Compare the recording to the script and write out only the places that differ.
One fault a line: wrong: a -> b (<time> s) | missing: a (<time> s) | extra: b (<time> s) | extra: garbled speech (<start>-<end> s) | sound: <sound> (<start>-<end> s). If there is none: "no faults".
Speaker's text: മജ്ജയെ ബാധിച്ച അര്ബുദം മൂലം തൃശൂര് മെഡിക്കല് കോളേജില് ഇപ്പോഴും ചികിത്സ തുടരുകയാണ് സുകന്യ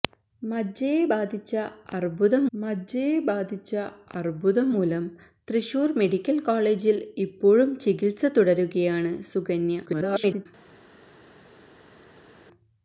extra: മജ്ജയെ ബാധിച്ച അര്ബുദം (2.5 s)
extra: garbled speech (9.9-10.5 s)